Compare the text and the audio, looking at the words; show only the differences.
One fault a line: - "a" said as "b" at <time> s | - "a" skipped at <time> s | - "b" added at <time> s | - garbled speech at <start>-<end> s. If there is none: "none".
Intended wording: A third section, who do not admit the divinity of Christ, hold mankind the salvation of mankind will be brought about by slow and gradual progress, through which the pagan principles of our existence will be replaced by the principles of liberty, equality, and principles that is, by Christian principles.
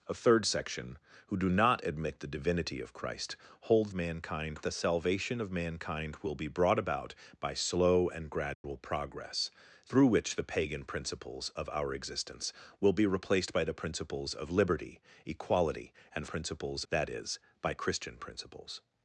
none